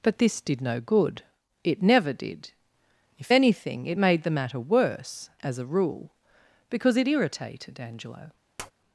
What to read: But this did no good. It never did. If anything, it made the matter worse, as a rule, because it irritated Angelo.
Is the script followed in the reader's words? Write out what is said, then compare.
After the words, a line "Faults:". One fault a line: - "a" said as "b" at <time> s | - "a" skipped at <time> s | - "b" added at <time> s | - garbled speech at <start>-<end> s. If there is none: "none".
But this did no good. It never did. If anything, it made the matter worse, as a rule, because it irritated Angelo.
Faults:
none